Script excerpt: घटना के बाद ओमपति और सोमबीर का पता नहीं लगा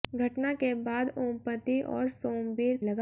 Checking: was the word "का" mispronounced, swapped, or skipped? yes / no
yes